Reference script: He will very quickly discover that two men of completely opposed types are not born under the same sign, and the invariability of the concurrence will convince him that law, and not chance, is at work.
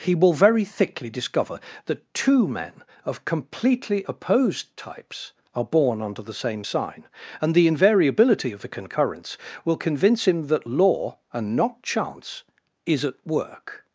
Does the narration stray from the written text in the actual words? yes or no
yes